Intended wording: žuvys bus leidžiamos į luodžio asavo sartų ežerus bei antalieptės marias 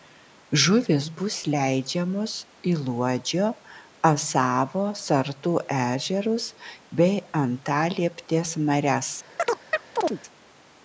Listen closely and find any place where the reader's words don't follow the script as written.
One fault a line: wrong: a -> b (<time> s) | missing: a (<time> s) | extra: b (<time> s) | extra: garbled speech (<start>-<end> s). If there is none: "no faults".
no faults